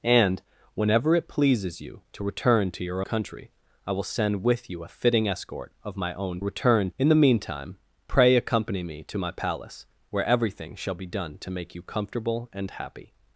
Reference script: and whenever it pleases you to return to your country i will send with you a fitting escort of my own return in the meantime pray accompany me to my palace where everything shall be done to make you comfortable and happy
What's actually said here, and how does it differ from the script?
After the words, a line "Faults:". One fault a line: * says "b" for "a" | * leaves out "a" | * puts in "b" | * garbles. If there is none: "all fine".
and whenever it pleases you to return to your country i will send with you a fitting escort of my own return in the meantime pray accompany me to my palace where everything shall be done to make you comfortable and happy
Faults:
all fine